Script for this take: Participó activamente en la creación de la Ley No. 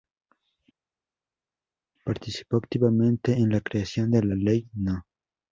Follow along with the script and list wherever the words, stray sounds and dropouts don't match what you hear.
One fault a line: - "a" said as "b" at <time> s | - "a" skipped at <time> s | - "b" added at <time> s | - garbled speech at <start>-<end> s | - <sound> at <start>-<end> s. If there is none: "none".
none